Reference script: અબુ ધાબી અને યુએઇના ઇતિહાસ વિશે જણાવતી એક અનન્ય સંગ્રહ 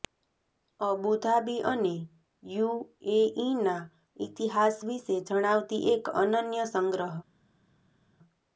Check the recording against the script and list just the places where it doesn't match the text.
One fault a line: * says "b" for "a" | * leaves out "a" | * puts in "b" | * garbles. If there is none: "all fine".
all fine